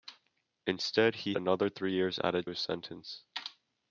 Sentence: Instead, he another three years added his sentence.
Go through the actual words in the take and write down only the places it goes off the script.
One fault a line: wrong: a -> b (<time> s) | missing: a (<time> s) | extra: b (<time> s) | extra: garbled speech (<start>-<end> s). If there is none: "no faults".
no faults